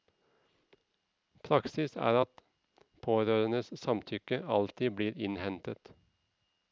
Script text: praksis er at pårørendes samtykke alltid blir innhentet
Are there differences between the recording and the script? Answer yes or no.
no